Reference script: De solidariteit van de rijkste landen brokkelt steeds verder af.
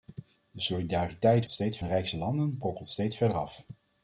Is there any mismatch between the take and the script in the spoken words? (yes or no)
yes